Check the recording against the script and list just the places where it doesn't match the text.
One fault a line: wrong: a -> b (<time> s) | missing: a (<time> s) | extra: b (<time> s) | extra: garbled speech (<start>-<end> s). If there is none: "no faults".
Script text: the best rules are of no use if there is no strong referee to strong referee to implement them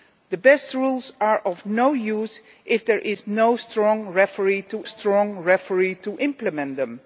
no faults